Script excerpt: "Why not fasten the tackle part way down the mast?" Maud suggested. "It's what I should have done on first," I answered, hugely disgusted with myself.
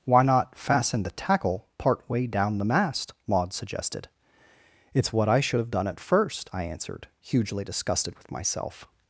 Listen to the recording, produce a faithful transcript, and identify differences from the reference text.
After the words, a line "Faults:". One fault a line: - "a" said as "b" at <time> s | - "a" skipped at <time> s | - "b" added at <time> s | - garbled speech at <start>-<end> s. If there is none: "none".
"Why not fasten the tackle part way down the mast?" Maud suggested. "It's what I should have done at first," I answered, hugely disgusted with myself.
Faults:
- "on" said as "at" at 5.9 s